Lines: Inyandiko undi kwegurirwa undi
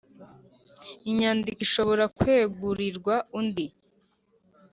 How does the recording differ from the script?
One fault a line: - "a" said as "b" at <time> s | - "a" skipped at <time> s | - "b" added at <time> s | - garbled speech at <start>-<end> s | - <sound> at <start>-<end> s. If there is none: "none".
- "undi" said as "ishobora" at 1.7 s